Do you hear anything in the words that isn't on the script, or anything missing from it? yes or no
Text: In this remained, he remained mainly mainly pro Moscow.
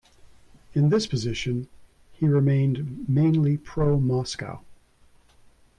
yes